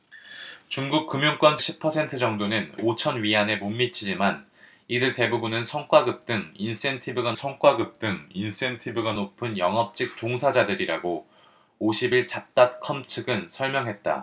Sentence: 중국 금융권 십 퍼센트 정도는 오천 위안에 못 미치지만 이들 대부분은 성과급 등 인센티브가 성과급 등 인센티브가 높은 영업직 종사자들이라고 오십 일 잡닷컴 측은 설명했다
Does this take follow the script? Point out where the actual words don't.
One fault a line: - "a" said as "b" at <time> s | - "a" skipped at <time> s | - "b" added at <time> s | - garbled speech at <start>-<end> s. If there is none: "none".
none